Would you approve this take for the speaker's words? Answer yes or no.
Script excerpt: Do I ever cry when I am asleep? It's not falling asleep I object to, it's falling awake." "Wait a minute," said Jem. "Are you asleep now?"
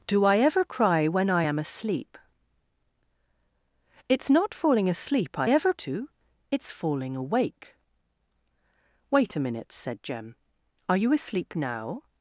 no